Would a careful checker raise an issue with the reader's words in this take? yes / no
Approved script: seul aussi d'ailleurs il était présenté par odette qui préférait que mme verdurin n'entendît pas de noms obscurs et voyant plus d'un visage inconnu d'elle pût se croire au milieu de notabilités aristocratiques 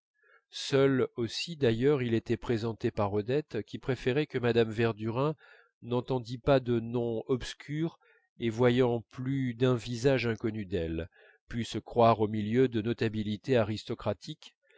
no